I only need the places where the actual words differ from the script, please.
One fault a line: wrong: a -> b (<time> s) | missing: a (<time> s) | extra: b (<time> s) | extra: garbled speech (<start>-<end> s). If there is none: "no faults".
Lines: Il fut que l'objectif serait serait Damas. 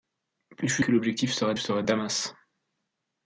no faults